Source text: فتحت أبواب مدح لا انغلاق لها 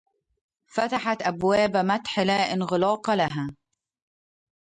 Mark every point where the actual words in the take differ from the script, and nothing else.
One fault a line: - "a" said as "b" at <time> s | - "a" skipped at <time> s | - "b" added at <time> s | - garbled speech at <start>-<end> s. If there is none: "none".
none